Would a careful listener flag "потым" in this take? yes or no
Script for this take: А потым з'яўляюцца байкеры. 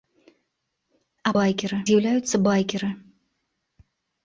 yes